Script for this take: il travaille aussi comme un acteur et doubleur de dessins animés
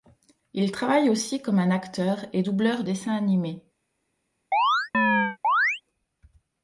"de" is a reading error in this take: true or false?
true